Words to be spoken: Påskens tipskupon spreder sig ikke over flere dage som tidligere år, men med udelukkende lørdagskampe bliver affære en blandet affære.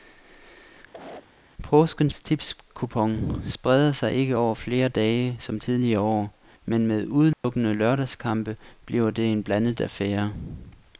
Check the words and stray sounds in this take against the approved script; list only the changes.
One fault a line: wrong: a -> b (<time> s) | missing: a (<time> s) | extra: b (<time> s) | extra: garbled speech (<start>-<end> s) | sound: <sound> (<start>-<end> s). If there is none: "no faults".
sound: cough (0.9-1.3 s)
sound: dropout (7.3-7.4 s)
wrong: affære -> det (9.1 s)